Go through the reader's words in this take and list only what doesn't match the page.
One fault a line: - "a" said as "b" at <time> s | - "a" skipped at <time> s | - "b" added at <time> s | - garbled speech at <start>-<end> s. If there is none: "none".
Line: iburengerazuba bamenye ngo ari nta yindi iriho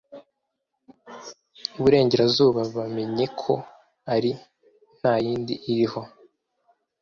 - "ngo" said as "ko" at 3.4 s